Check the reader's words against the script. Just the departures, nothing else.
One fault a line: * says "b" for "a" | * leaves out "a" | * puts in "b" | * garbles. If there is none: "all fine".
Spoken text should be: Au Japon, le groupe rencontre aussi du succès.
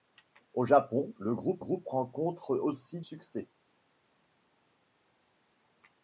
* puts in "groupe"
* leaves out "du"